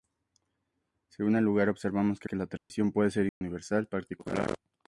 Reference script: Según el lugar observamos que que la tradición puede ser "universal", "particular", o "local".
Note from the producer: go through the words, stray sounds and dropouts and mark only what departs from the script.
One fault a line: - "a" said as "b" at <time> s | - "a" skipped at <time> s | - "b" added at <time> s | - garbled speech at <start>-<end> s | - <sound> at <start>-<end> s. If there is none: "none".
- dropout at 2.6-2.7 s
- dropout at 3.3-3.4 s